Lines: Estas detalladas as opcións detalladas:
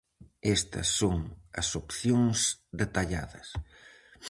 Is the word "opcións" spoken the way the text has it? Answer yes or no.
yes